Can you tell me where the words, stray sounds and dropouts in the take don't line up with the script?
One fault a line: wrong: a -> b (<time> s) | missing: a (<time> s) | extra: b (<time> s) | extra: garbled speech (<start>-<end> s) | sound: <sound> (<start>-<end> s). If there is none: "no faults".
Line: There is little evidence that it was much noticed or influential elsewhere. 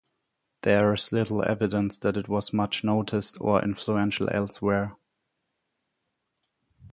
no faults